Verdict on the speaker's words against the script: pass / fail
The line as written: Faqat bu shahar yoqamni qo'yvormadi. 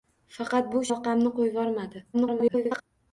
fail